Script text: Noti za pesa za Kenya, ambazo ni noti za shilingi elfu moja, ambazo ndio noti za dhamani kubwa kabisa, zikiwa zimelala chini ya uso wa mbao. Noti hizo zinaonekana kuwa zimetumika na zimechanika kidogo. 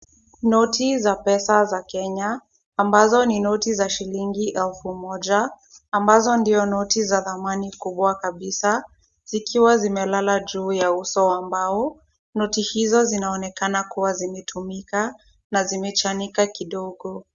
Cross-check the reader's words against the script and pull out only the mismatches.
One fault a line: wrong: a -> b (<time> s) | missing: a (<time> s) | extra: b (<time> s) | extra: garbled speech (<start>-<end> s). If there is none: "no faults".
wrong: chini -> juu (10.4 s)